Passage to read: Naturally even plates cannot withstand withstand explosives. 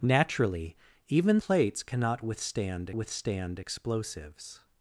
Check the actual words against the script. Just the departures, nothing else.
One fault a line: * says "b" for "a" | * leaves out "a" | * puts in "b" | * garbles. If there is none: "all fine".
all fine